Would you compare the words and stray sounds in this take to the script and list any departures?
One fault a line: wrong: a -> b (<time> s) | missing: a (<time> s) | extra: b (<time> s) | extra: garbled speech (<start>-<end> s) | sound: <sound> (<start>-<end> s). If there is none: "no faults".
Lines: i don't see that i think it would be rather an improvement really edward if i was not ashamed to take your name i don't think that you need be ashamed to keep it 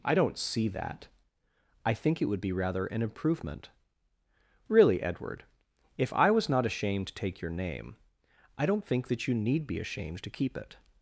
no faults